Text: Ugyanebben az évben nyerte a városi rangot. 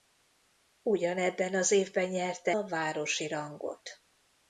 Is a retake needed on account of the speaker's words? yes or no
no